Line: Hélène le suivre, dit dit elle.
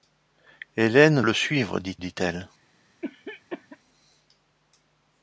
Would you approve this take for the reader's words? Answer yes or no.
yes